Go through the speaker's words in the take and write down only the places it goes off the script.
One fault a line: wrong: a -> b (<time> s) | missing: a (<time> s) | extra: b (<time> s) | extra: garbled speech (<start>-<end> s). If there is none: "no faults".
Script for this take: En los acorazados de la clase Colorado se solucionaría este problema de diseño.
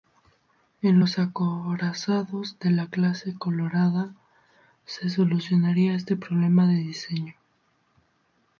no faults